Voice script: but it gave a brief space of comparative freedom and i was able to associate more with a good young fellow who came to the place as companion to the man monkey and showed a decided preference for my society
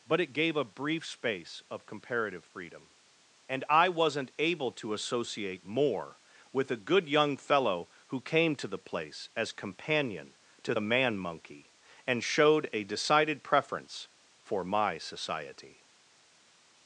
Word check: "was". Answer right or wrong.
wrong